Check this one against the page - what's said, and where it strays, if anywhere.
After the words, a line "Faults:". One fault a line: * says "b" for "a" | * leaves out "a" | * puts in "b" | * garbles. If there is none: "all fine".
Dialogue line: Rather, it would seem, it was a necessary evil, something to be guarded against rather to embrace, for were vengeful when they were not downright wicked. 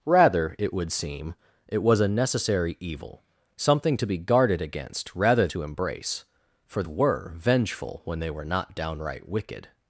Rather, it would seem, it was a necessary evil, something to be guarded against rather to embrace, for were vengeful when they were not downright wicked.
Faults:
all fine